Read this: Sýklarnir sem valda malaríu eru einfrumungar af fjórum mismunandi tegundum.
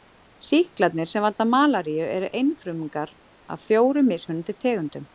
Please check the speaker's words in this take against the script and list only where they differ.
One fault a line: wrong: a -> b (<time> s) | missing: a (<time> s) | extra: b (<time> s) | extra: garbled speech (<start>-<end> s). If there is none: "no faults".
no faults